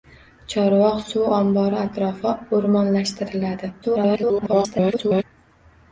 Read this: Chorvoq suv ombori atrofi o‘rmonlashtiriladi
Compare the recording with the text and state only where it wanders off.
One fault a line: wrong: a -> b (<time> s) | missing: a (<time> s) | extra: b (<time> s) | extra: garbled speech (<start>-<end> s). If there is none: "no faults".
extra: garbled speech (3.8-5.2 s)